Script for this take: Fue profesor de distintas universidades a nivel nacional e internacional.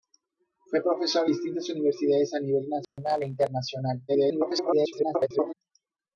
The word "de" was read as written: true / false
false